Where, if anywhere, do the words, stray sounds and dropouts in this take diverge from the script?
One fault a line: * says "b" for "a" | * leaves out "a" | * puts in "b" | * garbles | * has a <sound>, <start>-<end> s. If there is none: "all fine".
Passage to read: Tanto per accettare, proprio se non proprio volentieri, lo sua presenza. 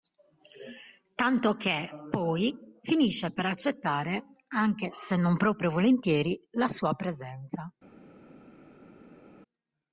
* puts in "che poi finisce"
* says "anche" for "proprio"
* says "la" for "lo"